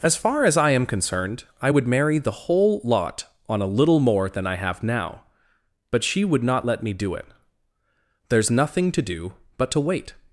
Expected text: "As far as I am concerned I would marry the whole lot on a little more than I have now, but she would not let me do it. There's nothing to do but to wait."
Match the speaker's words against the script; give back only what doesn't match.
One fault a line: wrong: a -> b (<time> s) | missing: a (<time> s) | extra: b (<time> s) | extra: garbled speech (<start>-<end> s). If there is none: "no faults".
no faults